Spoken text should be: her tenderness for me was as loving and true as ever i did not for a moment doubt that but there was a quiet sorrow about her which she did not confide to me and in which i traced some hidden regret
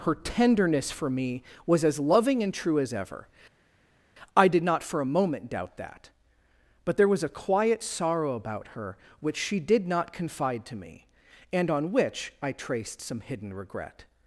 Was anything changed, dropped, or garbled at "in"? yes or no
yes